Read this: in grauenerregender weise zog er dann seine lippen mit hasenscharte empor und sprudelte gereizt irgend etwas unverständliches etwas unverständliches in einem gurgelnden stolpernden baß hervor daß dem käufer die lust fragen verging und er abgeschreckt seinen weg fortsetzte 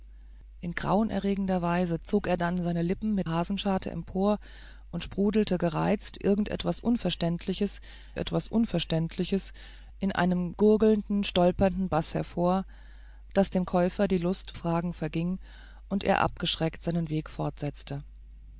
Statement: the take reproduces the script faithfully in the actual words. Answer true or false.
true